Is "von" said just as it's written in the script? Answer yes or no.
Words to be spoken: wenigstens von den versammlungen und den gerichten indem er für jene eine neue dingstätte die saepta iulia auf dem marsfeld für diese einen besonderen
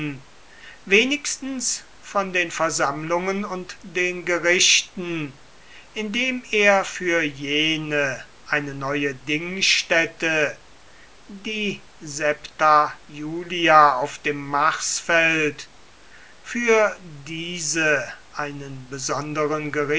yes